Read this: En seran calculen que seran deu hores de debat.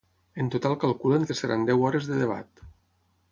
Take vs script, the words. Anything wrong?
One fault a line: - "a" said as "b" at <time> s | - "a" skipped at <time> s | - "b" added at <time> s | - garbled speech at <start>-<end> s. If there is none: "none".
- "seran" said as "total" at 0.5 s